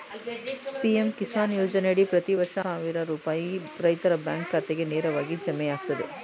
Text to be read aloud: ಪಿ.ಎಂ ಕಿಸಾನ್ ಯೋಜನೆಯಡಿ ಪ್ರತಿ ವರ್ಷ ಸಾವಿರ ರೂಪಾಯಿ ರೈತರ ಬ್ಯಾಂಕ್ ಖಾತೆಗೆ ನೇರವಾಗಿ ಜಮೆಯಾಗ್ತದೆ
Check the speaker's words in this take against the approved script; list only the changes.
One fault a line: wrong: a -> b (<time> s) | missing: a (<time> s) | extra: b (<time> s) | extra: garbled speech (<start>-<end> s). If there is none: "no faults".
no faults